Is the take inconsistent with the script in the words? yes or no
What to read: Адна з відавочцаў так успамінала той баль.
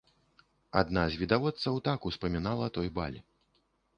no